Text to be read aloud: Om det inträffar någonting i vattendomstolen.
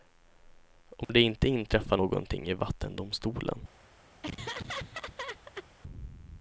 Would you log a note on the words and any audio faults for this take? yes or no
yes